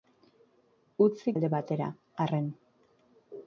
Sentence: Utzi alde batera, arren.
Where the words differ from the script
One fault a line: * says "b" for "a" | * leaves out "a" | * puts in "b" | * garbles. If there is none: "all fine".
all fine